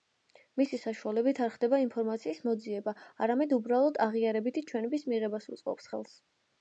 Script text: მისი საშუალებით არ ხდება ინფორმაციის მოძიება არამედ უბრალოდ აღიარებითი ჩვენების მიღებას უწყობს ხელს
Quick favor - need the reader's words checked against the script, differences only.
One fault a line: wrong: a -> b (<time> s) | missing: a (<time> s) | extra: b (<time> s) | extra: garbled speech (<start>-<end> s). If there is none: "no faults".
no faults